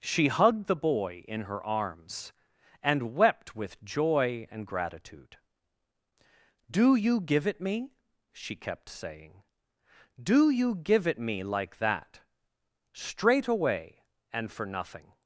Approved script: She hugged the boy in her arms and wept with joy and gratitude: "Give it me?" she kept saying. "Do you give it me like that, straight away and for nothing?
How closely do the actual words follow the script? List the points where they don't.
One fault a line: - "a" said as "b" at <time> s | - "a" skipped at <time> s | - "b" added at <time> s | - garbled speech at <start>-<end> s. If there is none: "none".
- "Do you" added at 6.7 s